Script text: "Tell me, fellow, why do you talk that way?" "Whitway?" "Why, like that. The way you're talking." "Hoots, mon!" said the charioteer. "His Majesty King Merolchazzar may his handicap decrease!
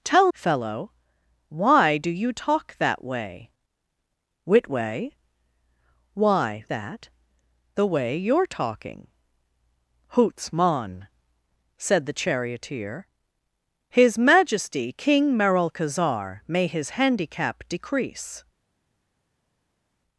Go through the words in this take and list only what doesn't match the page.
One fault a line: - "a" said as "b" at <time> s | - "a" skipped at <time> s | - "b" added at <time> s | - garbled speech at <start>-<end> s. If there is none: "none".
- "me" skipped at 0.3 s
- "like" skipped at 6.6 s